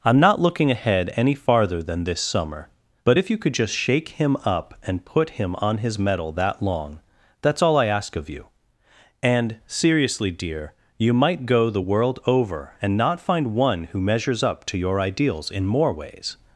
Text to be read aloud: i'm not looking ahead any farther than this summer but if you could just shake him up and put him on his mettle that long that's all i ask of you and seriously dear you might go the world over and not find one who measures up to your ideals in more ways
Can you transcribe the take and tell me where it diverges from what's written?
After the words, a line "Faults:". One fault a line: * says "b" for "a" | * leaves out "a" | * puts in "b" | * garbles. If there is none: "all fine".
i'm not looking ahead any farther than this summer but if you could just shake him up and put him on his mettle that long that's all i ask of you and seriously dear you might go the world over and not find one who measures up to your ideals in more ways
Faults:
all fine